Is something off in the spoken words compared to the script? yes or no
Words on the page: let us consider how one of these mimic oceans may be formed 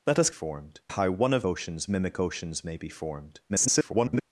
yes